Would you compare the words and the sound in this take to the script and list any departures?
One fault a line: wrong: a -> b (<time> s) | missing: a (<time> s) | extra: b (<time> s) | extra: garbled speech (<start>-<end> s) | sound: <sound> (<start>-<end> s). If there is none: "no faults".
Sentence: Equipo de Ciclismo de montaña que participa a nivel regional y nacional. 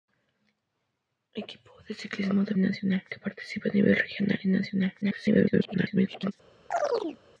wrong: montaña -> nacional (2.6 s)
extra: garbled speech (5.0-6.3 s)
sound: chirp (6.7-7.2 s)